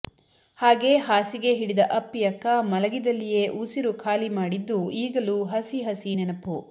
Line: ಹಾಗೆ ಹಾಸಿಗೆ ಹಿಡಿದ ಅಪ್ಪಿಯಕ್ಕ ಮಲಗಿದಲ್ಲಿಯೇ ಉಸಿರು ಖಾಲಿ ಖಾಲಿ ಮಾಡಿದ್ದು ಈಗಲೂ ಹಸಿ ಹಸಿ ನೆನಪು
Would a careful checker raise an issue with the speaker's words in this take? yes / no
yes